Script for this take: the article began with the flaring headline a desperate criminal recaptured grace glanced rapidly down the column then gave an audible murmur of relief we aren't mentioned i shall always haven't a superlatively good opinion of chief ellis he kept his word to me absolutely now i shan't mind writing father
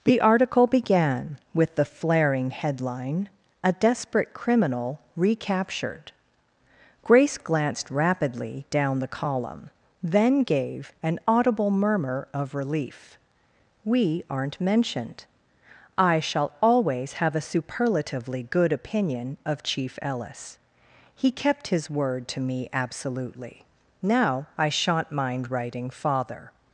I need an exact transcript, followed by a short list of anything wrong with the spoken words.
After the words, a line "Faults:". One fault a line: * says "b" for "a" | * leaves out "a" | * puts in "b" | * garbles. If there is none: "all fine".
the article began with the flaring headline a desperate criminal recaptured grace glanced rapidly down the column then gave an audible murmur of relief we aren't mentioned i shall always have a superlatively good opinion of chief ellis he kept his word to me absolutely now i shan't mind writing father
Faults:
* says "have" for "haven't"